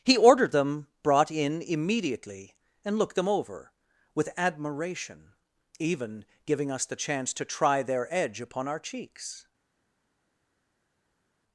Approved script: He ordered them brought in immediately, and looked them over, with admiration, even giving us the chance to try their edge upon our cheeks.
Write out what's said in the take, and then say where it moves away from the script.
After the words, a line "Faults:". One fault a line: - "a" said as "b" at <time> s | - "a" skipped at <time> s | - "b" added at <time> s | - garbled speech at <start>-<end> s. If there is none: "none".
He ordered them brought in immediately, and looked them over, with admiration, even giving us the chance to try their edge upon our cheeks.
Faults:
none